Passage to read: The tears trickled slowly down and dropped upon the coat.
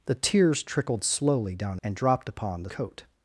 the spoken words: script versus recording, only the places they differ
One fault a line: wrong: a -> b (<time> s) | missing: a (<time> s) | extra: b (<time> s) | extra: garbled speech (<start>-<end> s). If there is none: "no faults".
no faults